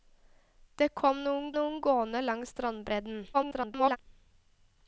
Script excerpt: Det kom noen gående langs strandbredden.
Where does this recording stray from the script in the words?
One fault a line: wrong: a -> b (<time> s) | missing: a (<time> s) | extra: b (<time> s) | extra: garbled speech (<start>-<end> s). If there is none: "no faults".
extra: noen (1.6 s)
extra: garbled speech (3.3-4.0 s)